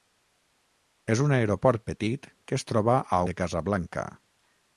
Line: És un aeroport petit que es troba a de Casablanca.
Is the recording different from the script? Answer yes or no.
no